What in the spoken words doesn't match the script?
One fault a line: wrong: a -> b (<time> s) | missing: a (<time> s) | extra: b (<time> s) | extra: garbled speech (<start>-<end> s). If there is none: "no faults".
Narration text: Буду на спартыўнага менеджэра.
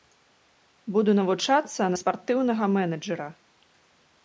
extra: навучацца (1.2 s)